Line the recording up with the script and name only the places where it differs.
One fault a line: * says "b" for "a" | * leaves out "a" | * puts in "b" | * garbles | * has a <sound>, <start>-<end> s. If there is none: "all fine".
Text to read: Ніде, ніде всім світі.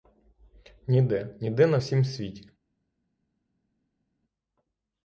* puts in "на"